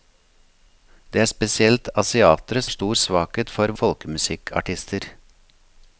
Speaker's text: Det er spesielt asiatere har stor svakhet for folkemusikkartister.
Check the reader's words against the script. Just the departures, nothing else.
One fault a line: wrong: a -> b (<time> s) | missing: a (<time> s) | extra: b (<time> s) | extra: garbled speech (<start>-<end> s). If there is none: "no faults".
no faults